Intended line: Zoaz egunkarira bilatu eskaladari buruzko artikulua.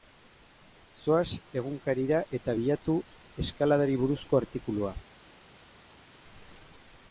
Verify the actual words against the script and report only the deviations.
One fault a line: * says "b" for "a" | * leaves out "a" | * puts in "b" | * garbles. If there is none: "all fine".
* puts in "eta"